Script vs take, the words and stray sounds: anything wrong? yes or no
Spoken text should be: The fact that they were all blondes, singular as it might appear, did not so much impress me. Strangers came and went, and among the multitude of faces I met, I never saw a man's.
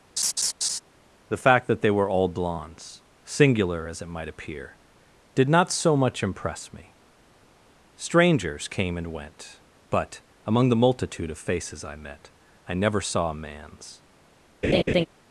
yes